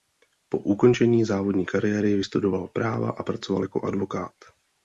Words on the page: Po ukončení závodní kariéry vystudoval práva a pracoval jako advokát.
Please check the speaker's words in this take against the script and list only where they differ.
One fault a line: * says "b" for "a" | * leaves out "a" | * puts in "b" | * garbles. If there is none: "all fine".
all fine